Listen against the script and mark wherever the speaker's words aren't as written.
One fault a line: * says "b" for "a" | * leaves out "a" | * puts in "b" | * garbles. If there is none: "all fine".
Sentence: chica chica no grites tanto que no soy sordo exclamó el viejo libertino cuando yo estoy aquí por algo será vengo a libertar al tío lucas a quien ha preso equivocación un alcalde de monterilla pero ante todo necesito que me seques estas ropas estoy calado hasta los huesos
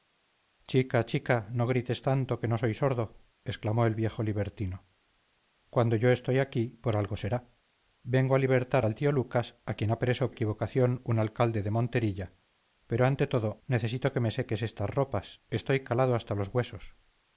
all fine